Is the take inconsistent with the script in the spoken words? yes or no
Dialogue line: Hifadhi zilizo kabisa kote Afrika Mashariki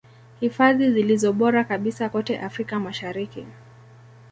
yes